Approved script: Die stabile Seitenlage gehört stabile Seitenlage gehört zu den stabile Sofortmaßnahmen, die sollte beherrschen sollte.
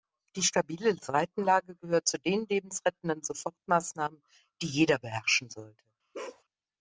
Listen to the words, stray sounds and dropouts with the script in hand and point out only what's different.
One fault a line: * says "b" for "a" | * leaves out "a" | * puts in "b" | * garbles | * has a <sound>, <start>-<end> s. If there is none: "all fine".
* leaves out "stabile Seitenlage gehört"
* says "lebensrettenden" for "stabile"
* says "jeder" for "sollte"
* has a bark, 6.1-6.4 s